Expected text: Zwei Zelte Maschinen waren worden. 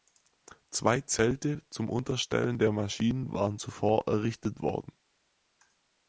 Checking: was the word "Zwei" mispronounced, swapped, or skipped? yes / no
no